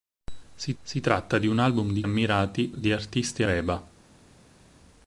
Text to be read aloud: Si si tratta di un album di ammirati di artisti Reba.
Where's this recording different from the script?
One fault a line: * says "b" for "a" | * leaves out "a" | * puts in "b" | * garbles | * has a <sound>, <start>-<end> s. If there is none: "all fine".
all fine